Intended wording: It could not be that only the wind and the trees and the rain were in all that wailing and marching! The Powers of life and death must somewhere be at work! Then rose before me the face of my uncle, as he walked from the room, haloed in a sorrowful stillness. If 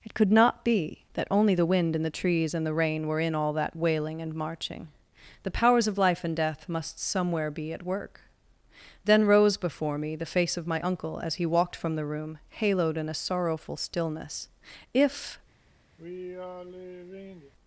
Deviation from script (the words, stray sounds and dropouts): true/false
true